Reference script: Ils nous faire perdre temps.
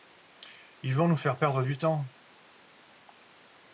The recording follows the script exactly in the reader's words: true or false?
false